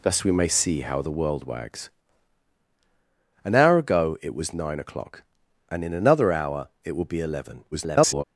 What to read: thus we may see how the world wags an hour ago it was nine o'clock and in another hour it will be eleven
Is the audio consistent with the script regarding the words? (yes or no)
no